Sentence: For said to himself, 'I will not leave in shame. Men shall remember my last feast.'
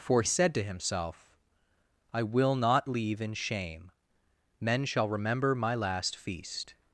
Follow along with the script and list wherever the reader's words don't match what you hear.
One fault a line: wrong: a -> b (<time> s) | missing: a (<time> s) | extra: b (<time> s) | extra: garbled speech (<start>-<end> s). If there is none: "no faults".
no faults